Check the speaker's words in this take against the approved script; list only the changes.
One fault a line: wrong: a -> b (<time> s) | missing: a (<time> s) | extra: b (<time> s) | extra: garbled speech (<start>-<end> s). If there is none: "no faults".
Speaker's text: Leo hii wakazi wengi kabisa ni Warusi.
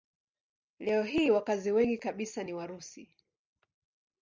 no faults